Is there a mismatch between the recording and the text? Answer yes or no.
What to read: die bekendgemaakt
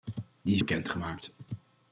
no